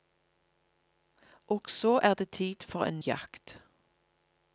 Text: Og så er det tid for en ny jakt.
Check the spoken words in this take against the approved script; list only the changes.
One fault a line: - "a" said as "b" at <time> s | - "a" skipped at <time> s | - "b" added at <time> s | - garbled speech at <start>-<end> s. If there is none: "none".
- "ny" skipped at 3.0 s